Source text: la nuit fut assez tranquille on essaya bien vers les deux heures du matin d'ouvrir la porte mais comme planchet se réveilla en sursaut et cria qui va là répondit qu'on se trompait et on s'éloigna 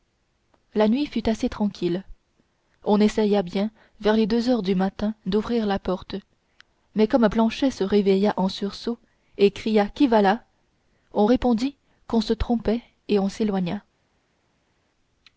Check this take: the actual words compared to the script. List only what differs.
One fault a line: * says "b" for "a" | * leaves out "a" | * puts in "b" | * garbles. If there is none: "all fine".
* puts in "on"